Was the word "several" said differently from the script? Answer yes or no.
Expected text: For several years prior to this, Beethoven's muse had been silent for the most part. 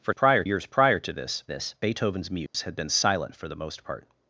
yes